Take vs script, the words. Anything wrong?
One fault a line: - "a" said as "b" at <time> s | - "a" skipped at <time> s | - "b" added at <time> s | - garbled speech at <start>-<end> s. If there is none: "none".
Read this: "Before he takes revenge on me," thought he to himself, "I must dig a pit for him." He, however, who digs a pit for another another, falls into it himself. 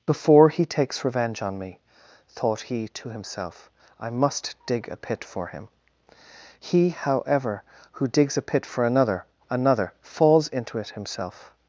none